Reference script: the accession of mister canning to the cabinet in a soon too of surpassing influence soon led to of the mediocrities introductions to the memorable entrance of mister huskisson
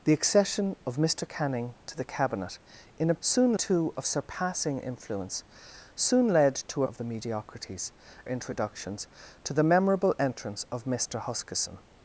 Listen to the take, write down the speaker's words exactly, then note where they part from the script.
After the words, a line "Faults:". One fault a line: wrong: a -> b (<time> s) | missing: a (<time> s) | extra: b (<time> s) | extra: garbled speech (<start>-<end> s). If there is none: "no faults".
the accession of mister canning to the cabinet in a soon too of surpassing influence soon led to of the mediocrities introductions to the memorable entrance of mister huskisson
Faults:
no faults